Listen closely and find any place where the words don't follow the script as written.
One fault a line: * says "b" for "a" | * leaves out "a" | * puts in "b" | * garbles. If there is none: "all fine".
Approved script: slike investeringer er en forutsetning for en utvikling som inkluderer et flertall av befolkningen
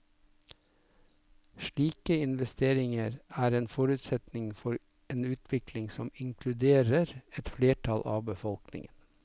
all fine